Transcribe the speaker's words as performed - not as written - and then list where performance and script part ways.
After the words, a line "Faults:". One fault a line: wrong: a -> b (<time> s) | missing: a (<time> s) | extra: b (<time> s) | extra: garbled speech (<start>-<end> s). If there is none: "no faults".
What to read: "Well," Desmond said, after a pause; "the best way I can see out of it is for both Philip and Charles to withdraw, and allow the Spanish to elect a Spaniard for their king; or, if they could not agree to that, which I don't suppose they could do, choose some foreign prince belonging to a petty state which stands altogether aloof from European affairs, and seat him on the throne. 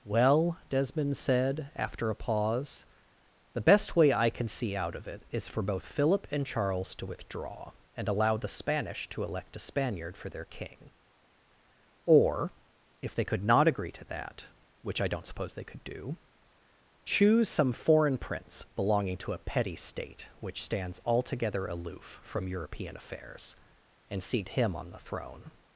"Well," Desmond said, after a pause; "the best way I can see out of it is for both Philip and Charles to withdraw, and allow the Spanish to elect a Spaniard for their king; or, if they could not agree to that, which I don't suppose they could do, choose some foreign prince belonging to a petty state which stands altogether aloof from European affairs, and seat him on the throne.
Faults:
no faults